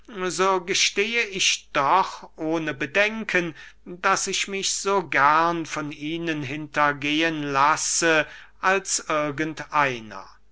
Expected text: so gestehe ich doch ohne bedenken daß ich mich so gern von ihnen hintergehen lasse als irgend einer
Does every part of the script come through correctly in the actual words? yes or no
yes